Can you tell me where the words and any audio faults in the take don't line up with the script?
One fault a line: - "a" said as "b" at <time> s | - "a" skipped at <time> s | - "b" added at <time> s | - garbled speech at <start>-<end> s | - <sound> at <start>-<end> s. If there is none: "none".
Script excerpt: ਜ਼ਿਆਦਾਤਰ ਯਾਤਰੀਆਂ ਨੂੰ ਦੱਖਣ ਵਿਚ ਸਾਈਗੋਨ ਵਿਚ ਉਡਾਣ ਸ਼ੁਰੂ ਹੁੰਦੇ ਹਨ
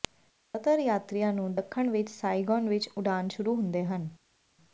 none